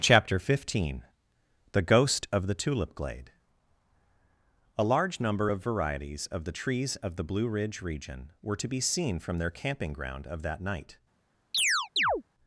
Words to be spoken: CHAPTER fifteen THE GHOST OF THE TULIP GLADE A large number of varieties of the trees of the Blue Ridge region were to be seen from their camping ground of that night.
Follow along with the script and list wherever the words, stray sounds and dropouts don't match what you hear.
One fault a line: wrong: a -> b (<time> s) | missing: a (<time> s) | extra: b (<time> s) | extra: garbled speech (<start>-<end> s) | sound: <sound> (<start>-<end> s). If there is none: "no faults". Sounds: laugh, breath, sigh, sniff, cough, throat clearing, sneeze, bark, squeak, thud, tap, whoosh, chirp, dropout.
sound: chirp (11.5-12.2 s)